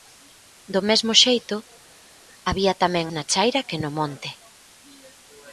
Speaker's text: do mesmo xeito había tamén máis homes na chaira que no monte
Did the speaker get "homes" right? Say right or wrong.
wrong